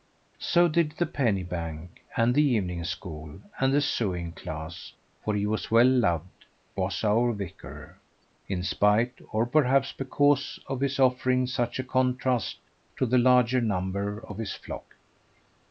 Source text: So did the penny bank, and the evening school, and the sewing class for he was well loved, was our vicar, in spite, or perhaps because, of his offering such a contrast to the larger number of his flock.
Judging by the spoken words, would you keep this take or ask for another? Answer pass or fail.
pass